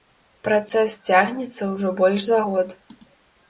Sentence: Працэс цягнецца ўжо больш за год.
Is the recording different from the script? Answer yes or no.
no